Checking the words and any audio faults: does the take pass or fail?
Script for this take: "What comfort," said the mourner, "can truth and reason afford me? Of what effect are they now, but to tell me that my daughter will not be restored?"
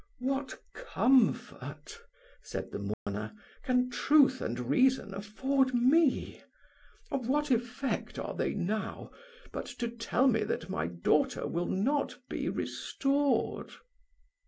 fail